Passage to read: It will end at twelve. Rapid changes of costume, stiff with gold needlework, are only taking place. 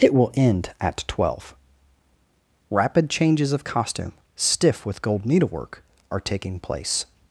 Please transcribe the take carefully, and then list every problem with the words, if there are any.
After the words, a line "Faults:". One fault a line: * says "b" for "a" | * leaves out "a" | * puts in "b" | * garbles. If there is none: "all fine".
It will end at twelve. Rapid changes of costume, stiff with gold needlework, are taking place.
Faults:
* leaves out "only"